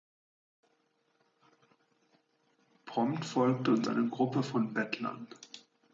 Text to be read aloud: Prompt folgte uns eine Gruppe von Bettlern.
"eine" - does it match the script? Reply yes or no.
yes